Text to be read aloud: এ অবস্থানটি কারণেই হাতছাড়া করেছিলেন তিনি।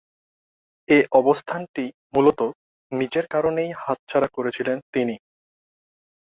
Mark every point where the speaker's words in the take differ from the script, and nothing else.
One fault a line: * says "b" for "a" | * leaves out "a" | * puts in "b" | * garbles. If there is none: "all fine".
* puts in "মূলতঃ নিজের"